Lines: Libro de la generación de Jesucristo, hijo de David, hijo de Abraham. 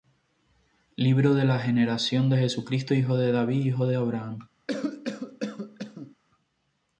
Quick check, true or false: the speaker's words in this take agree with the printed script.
true